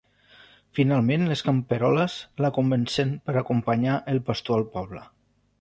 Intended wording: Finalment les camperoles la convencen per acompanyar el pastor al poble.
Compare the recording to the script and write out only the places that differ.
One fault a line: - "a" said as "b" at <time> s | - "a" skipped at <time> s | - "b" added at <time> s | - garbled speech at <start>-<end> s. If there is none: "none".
none